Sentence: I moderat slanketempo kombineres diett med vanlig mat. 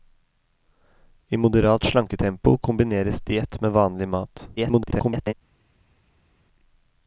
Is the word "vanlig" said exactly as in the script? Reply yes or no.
yes